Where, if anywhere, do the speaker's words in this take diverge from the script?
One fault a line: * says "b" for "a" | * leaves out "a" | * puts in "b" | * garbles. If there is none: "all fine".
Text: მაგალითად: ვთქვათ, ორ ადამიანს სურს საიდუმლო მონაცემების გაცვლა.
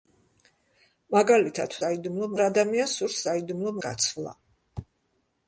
* says "საიდუმლო" for "ვთქვათ"
* leaves out "მონაცემების"